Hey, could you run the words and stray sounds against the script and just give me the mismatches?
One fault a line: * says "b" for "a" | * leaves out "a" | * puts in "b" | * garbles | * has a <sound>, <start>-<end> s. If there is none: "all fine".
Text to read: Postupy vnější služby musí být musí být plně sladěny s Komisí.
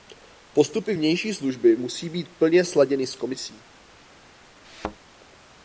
* leaves out "musí být"
* has a thud, 4.6-5.0 s